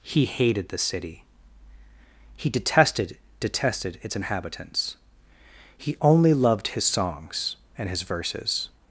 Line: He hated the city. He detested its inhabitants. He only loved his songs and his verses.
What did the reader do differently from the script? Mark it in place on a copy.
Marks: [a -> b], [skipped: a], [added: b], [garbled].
He hated the city. He detested [added: detested] its inhabitants. He only loved his songs and his verses.